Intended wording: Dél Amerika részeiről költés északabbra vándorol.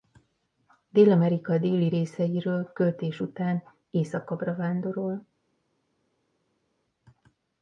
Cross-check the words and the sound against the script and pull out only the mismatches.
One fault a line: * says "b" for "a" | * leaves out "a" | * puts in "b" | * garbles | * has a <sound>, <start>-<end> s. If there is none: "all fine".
* puts in "déli"
* puts in "után"